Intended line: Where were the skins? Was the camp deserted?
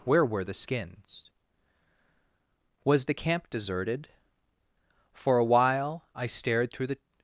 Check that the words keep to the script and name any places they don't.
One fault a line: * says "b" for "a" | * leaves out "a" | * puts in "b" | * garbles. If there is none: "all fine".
* puts in "For a while I stared through the"